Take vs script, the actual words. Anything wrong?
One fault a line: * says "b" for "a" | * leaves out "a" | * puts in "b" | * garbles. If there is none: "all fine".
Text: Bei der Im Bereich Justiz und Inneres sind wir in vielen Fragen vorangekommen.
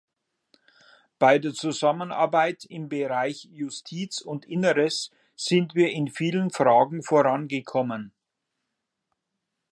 * puts in "Zusammenarbeit"